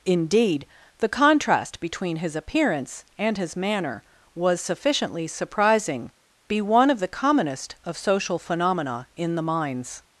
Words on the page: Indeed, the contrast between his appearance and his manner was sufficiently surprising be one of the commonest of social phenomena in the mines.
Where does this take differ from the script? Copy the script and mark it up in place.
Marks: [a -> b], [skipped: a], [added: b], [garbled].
Indeed, the contrast between his appearance and his manner was sufficiently surprising be one of the commonest of social phenomena in the mines.